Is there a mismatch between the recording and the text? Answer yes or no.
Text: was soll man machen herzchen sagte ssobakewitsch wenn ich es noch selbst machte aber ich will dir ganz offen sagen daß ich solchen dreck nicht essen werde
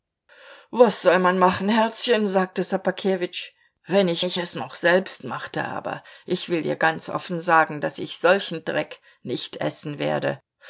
yes